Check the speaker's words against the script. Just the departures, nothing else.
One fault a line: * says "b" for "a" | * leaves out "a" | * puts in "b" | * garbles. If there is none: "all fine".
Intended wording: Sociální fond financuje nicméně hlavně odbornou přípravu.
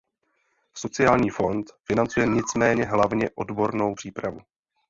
all fine